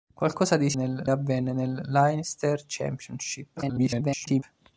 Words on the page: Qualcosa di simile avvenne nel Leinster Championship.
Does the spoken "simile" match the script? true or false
false